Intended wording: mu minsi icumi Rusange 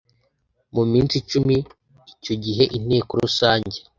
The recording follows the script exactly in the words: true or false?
false